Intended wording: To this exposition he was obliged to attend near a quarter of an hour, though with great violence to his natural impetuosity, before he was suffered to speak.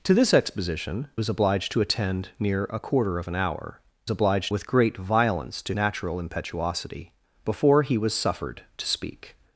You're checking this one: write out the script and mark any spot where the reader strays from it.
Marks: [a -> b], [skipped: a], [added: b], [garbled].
To this exposition [skipped: he] was obliged to attend near a quarter of an hour, [though -> obliged] with great violence to [skipped: his] natural impetuosity, before he was suffered to speak.